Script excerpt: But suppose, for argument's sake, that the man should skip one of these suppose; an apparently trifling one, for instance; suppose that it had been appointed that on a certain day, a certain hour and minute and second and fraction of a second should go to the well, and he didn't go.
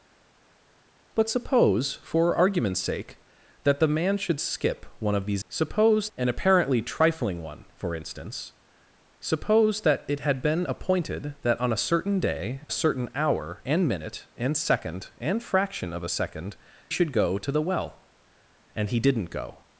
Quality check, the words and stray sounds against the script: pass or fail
pass